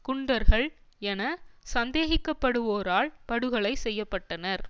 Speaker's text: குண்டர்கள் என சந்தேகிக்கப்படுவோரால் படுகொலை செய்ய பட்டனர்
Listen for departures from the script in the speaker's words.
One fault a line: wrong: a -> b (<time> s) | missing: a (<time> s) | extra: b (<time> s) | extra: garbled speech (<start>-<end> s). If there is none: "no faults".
no faults